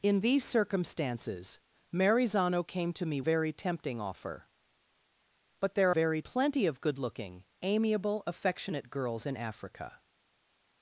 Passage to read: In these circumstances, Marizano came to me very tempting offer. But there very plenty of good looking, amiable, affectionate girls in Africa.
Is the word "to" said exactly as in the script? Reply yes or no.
yes